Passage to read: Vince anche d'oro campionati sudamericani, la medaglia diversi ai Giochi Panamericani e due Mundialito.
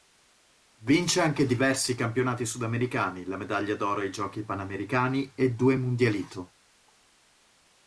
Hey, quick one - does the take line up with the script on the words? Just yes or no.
no